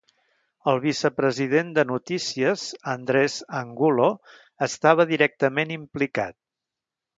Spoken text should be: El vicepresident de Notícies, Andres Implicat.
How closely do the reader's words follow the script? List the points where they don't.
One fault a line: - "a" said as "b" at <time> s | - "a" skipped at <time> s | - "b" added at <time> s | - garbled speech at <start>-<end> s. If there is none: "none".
- "Angulo estava directament" added at 3.6 s